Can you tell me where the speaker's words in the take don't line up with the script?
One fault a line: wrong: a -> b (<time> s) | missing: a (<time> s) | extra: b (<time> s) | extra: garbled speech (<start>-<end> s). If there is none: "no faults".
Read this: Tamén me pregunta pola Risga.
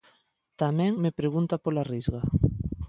no faults